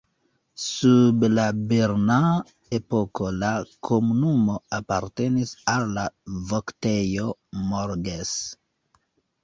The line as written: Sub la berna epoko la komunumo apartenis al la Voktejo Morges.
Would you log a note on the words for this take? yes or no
no